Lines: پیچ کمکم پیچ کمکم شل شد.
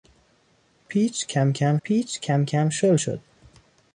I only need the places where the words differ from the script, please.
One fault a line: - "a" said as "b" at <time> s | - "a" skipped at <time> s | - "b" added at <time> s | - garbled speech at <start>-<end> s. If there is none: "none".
none